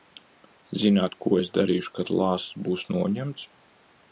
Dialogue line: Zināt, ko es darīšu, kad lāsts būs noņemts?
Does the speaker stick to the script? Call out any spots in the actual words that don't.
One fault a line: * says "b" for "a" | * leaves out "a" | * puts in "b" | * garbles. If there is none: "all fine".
all fine